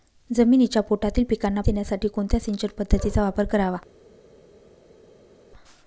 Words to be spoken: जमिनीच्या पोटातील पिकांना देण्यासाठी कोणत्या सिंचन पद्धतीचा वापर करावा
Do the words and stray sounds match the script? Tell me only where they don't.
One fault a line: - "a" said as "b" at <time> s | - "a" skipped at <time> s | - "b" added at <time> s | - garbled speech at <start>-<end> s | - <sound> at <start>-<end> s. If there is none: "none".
none